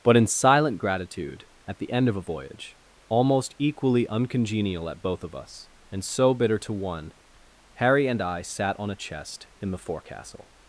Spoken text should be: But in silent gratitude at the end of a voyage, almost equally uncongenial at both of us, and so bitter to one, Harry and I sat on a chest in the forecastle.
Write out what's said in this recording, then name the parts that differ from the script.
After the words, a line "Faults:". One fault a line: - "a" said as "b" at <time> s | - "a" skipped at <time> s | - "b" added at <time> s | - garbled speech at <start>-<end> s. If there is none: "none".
But in silent gratitude at the end of a voyage, almost equally uncongenial at both of us, and so bitter to one, Harry and I sat on a chest in the forecastle.
Faults:
none